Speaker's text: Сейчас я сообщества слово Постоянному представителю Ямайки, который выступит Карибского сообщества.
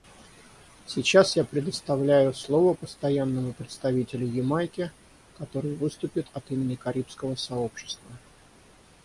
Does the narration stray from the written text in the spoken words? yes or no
yes